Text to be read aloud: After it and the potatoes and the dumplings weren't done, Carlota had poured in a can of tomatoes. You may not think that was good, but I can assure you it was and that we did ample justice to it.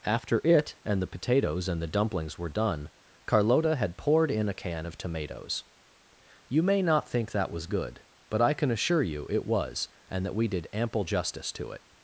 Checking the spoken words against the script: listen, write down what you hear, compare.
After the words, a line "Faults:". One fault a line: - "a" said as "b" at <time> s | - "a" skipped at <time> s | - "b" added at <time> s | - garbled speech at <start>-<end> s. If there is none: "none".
After it and the potatoes and the dumplings were done, Carlota had poured in a can of tomatoes. You may not think that was good, but I can assure you it was and that we did ample justice to it.
Faults:
- "weren't" said as "were" at 2.4 s